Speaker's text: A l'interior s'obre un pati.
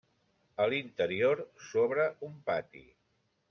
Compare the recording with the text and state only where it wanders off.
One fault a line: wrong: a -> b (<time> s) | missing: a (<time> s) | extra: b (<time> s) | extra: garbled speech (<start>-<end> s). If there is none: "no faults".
no faults